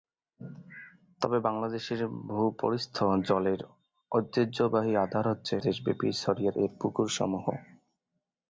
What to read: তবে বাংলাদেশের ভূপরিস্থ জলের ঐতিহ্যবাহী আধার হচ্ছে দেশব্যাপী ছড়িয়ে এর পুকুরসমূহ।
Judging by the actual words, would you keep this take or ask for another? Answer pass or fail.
pass